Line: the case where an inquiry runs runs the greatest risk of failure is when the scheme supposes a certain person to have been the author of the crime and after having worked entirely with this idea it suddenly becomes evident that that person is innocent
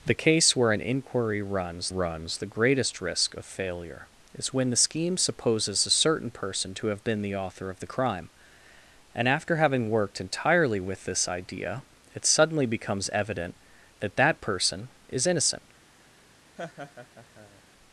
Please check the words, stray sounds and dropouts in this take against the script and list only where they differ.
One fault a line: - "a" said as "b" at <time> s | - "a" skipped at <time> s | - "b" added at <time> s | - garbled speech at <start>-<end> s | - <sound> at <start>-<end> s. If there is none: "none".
- laugh at 16.6-17.6 s